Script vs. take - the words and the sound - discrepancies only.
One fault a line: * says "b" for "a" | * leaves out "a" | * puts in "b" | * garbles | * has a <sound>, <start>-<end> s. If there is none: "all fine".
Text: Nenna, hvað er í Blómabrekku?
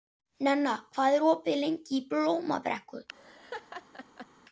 * puts in "opið lengi"
* has a laugh, 3.1-4.3 s